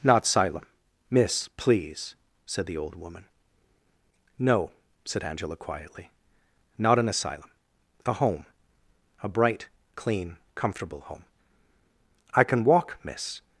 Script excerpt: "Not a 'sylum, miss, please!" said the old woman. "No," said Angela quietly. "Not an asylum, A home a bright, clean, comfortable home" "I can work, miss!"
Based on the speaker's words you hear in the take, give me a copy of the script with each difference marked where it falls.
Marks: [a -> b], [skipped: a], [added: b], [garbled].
"Not [skipped: a] 'sylum, miss, please!" said the old woman. "No," said Angela quietly. "Not an asylum, A home a bright, clean, comfortable home" "I can [work, -> walk] miss!"